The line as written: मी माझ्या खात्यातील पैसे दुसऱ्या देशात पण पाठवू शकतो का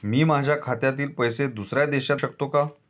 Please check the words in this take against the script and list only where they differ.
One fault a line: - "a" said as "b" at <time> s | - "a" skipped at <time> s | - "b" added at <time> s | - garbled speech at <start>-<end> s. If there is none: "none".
- "पण पाठवू" skipped at 2.2 s